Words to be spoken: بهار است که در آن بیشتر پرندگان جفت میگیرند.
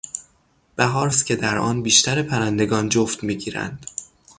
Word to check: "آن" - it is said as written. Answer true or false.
true